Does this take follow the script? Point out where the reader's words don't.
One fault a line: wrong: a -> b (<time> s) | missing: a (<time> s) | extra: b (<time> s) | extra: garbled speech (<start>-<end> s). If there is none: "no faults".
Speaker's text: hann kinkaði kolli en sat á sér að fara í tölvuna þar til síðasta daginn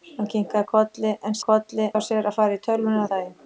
wrong: sat -> kolli (1.5 s)
missing: þar til síðasta (3.1 s)